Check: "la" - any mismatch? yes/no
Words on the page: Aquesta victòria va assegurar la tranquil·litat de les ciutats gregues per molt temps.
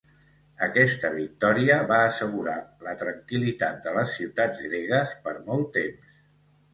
no